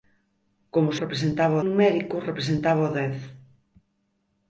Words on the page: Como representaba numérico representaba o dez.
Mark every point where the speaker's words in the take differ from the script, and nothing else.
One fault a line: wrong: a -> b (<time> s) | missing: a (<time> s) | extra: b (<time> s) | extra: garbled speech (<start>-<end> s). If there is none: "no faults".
no faults